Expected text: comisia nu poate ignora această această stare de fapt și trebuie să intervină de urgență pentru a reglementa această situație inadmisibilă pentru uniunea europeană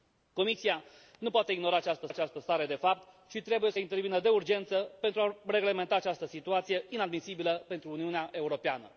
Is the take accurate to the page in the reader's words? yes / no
yes